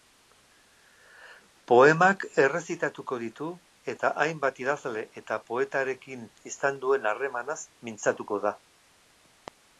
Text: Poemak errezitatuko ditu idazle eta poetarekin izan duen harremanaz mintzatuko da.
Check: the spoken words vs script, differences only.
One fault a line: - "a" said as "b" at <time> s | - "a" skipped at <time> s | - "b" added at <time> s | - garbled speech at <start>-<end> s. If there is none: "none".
- "eta hainbat" added at 4.0 s